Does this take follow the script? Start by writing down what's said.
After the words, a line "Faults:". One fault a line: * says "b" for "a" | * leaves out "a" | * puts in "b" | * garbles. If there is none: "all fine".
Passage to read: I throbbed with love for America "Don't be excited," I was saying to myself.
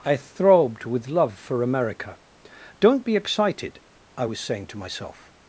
I throbbed with love for America "Don't be excited," I was saying to myself.
Faults:
all fine